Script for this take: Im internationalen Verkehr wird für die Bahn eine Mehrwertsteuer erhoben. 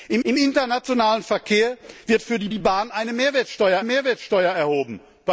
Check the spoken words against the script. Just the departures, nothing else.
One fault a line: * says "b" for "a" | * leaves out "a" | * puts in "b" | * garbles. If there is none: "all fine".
* puts in "im"
* puts in "die"
* puts in "Mehrwertsteuer"